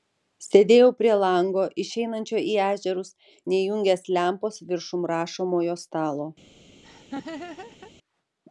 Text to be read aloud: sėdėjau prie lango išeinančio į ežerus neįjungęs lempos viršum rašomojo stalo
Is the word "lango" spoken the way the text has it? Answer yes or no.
yes